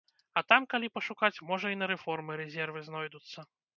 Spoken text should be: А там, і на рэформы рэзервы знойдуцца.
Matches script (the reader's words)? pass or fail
fail